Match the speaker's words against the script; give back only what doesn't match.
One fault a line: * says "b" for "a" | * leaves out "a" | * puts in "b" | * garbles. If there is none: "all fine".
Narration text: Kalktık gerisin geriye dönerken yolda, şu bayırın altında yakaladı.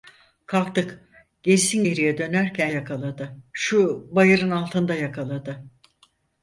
* says "yakaladı" for "yolda"